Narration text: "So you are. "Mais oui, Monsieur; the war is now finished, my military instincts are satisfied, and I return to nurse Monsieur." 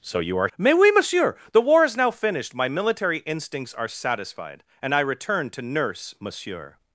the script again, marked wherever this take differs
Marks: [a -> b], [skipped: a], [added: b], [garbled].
"So you are. "Mais oui, Monsieur; the war is now finished, my military instincts are satisfied, and I return to nurse Monsieur."